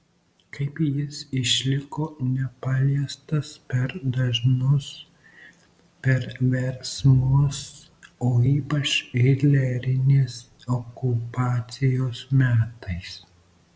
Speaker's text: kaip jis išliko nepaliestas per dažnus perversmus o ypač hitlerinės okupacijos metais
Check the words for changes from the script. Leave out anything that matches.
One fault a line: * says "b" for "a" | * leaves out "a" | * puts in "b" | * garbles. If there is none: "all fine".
all fine